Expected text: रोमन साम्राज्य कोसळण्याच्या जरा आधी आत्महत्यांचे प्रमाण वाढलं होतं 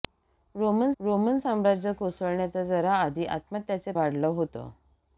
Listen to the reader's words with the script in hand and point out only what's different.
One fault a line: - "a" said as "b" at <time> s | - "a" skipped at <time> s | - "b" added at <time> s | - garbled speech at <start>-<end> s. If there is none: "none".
- "रोमन" added at 1.0 s
- "प्रमाण" skipped at 3.9 s